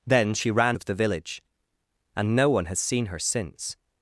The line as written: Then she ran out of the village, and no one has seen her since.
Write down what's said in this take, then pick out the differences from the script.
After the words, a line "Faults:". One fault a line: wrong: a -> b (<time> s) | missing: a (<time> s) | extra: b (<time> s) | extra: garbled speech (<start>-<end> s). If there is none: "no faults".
Then she ran of the village, and no one has seen her since.
Faults:
missing: out (0.8 s)